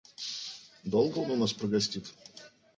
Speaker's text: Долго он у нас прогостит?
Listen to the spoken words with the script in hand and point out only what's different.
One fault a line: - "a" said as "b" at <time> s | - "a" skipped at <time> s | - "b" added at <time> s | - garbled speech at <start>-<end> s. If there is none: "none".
none